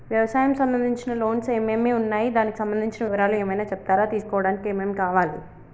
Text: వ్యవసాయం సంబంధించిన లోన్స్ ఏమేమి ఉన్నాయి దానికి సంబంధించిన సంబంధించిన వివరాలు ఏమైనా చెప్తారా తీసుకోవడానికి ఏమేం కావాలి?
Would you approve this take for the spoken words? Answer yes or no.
no